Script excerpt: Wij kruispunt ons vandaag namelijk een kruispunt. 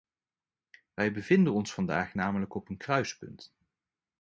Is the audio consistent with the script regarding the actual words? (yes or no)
no